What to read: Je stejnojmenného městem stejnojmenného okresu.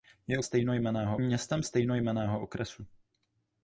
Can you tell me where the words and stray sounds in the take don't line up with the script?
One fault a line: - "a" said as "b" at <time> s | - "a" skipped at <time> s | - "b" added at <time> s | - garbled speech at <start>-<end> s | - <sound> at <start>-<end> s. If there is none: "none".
none